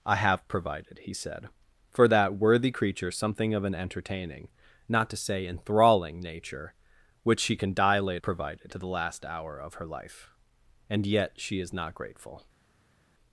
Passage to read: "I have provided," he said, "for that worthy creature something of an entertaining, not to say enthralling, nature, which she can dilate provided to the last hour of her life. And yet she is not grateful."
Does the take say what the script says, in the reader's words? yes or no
yes